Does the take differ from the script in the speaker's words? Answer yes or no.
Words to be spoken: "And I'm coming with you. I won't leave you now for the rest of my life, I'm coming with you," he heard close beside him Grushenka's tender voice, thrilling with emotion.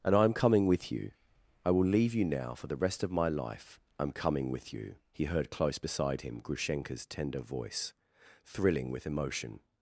yes